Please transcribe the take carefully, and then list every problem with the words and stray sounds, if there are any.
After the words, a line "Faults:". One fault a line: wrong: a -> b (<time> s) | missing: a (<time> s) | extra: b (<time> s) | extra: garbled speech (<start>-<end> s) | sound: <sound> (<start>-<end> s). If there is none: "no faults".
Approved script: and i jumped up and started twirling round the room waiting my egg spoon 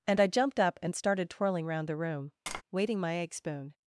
and i jumped up and started twirling round the room waiting my egg spoon
Faults:
sound: tap (2.5-2.6 s)